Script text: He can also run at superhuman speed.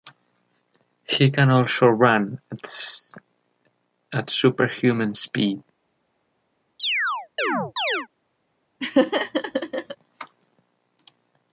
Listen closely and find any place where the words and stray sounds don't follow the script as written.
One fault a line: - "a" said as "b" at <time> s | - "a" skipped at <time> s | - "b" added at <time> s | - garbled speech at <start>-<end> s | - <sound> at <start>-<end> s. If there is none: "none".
- chirp at 6.8-8.1 s
- laugh at 8.8-10.0 s